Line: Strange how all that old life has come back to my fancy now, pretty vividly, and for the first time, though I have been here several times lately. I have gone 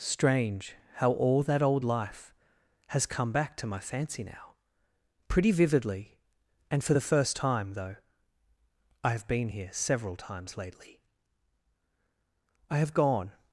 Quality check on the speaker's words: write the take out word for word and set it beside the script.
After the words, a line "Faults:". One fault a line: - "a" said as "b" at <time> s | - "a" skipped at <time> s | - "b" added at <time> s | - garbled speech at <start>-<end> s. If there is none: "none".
Strange how all that old life has come back to my fancy now, pretty vividly, and for the first time, though I have been here several times lately. I have gone
Faults:
none